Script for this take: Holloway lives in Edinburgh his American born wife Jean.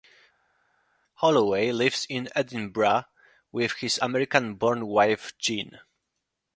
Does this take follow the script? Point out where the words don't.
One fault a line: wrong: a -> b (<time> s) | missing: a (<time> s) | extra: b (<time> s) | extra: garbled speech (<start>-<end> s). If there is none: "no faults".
extra: with (3.5 s)